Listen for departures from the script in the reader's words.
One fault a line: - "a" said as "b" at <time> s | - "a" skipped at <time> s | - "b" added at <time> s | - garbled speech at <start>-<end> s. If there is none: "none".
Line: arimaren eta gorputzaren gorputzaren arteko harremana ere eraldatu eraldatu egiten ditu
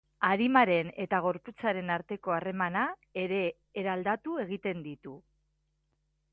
- "gorputzaren" skipped at 1.9 s
- "eraldatu" skipped at 4.4 s